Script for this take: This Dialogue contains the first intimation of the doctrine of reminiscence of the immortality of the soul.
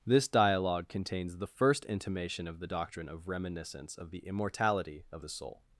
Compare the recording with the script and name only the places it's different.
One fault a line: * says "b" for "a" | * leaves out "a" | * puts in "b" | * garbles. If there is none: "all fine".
all fine